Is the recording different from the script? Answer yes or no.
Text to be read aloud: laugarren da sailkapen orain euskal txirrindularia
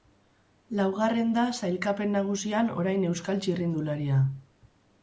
yes